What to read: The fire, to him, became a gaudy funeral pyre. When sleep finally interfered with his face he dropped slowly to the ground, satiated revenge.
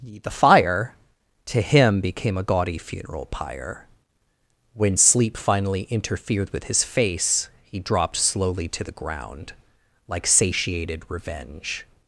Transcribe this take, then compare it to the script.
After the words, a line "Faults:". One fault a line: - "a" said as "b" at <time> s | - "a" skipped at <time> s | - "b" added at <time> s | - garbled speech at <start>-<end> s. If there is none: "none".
The fire, to him, became a gaudy funeral pyre. When sleep finally interfered with his face he dropped slowly to the ground, like satiated revenge.
Faults:
- "like" added at 10.1 s